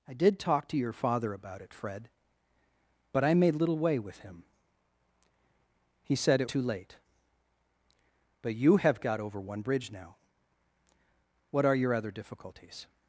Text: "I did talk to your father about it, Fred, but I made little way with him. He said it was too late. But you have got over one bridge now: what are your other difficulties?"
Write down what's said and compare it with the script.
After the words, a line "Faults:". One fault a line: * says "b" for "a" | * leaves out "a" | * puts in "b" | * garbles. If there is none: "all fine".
"I did talk to your father about it, Fred, but I made little way with him. He said it too late. But you have got over one bridge now: what are your other difficulties?"
Faults:
* leaves out "was"